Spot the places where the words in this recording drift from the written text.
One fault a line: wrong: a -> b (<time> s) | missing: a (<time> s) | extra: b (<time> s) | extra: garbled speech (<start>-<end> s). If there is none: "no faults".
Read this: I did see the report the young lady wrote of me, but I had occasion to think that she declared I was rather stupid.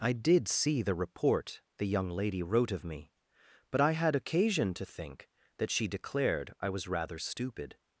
no faults